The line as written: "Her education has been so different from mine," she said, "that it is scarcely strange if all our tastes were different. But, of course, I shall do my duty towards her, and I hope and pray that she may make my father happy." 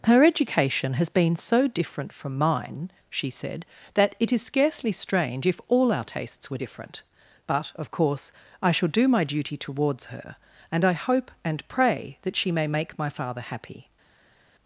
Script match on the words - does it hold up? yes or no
yes